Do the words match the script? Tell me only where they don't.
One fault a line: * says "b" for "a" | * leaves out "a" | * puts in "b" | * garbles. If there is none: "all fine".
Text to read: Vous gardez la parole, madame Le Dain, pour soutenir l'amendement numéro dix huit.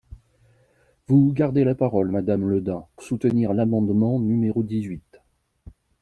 * leaves out "pour"